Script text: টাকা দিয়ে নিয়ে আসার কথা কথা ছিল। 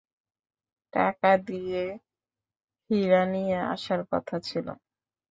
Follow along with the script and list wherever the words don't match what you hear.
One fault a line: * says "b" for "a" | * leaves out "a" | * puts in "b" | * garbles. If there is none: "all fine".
* puts in "হীরা"
* leaves out "কথা"